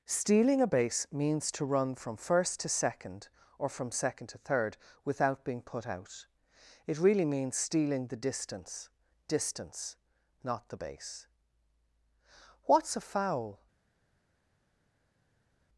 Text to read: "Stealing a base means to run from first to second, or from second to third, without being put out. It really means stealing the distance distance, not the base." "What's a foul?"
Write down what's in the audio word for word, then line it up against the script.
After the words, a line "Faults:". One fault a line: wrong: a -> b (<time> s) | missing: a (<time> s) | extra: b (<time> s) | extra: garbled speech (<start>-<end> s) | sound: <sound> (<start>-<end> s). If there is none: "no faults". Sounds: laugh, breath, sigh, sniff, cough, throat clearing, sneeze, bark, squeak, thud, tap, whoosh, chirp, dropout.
"Stealing a base means to run from first to second, or from second to third, without being put out. It really means stealing the distance distance, not the base." "What's a foul?"
Faults:
no faults